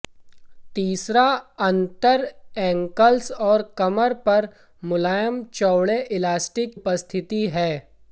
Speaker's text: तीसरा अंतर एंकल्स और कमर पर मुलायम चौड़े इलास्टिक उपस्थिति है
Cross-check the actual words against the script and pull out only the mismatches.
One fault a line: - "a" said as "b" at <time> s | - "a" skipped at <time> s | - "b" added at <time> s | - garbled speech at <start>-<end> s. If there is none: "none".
none